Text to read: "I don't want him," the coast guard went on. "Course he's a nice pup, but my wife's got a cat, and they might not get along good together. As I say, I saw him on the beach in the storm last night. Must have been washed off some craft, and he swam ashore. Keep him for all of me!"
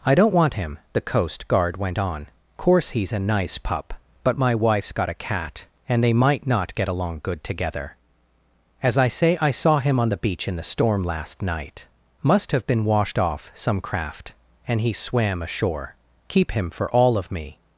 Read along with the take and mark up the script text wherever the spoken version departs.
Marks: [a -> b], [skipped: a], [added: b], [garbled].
"I don't want him," the coast guard went on. "Course he's a nice pup, but my wife's got a cat, and they might not get along good together. As I say, I saw him on the beach in the storm last night. Must have been washed off some craft, and he swam ashore. Keep him for all of me!"